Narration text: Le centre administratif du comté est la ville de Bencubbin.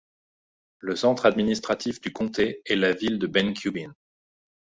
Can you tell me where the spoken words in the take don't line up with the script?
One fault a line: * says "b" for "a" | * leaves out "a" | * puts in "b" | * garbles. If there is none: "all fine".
all fine